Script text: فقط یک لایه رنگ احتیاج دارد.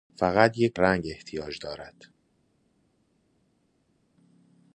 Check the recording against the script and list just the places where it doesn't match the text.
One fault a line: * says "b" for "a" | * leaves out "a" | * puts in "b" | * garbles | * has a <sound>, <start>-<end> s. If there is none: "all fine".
* leaves out "لایه"